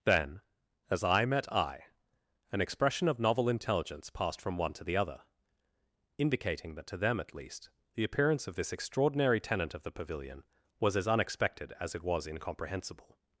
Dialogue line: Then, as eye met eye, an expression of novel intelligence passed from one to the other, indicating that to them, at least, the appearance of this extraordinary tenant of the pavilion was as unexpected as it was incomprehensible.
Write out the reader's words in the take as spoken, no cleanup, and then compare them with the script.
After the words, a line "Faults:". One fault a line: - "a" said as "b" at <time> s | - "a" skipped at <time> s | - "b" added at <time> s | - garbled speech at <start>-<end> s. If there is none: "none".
Then, as eye met eye, an expression of novel intelligence passed from one to the other, indicating that to them, at least, the appearance of this extraordinary tenant of the pavilion was as unexpected as it was incomprehensible.
Faults:
none